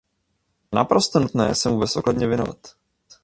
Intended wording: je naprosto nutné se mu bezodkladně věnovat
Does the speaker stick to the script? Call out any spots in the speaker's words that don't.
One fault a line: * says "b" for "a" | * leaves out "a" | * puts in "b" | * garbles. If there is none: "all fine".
all fine